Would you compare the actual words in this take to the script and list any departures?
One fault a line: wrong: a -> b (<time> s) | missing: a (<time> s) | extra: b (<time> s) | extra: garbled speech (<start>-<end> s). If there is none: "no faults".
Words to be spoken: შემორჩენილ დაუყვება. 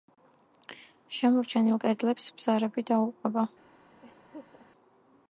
extra: კედლებს ბზარები (1.9 s)